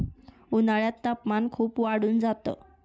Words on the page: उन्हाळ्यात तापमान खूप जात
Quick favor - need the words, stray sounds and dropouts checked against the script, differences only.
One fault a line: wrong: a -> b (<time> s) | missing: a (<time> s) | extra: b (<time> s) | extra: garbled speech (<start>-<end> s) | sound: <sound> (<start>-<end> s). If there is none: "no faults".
extra: वाढून (1.8 s)